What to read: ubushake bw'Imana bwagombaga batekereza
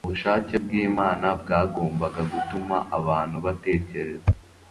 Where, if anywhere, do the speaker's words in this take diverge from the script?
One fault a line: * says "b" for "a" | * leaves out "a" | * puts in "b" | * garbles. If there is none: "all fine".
* puts in "gutuma abantu"